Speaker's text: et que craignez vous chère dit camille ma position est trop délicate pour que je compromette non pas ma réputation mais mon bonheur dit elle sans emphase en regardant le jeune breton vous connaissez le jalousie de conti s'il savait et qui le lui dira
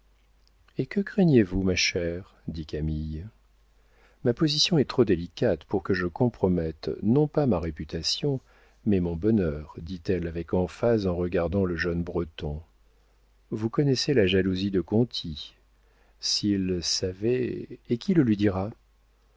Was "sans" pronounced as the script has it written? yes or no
no